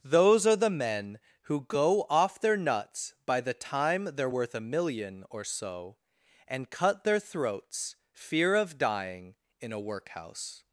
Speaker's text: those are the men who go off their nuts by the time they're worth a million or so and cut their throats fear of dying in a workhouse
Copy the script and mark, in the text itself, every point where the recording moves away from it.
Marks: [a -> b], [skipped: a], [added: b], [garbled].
those are the men who go off their nuts by the time they're worth a million or so and cut their throats fear of dying in a workhouse